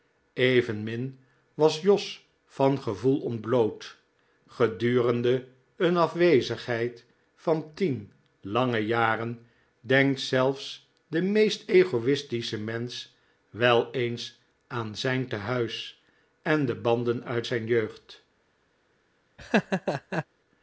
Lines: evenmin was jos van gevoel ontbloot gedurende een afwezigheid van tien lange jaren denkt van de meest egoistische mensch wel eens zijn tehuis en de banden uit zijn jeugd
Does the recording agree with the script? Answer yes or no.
no